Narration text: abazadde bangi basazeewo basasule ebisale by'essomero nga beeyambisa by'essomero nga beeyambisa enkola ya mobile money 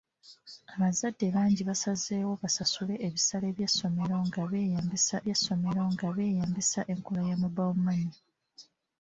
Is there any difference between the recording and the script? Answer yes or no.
no